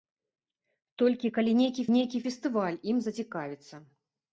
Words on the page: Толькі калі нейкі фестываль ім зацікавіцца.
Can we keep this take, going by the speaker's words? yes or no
no